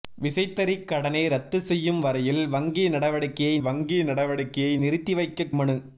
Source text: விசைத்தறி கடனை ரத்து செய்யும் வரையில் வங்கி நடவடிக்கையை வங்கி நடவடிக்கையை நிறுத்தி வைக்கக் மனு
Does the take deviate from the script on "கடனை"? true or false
false